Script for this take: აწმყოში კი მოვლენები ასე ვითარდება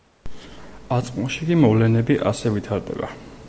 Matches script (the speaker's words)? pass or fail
pass